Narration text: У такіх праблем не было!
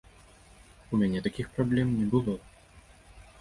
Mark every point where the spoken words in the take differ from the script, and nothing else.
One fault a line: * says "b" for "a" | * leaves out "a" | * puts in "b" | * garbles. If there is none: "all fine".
* puts in "мяне"